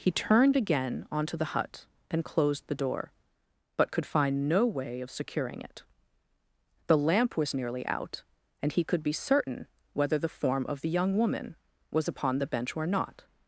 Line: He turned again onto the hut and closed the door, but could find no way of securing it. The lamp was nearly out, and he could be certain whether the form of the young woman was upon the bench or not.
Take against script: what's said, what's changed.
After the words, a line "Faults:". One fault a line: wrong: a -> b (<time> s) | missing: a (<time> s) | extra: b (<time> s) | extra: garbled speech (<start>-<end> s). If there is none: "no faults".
He turned again onto the hut and closed the door, but could find no way of securing it. The lamp was nearly out, and he could be certain whether the form of the young woman was upon the bench or not.
Faults:
no faults